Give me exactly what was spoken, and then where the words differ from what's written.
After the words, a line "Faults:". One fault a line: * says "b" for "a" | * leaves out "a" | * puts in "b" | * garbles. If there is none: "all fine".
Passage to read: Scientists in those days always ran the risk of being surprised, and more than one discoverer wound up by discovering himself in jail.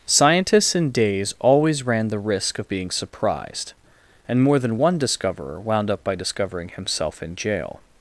Scientists in days always ran the risk of being surprised, and more than one discoverer wound up by discovering himself in jail.
Faults:
* leaves out "those"